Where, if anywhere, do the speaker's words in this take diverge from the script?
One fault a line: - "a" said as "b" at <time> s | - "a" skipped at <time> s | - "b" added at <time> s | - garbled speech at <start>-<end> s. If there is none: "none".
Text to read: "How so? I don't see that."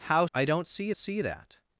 - "so" skipped at 0.2 s
- "see" added at 0.9 s